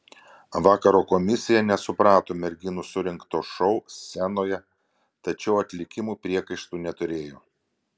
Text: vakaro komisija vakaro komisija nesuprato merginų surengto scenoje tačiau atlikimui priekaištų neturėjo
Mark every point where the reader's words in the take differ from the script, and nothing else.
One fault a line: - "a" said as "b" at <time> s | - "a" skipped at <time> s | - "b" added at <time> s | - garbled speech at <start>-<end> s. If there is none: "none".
- "vakaro komisija" skipped at 1.6 s
- "šou" added at 3.5 s